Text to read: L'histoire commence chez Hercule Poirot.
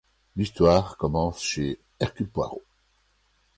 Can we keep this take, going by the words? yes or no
yes